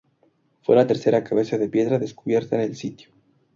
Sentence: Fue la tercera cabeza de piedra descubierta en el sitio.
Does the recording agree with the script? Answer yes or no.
yes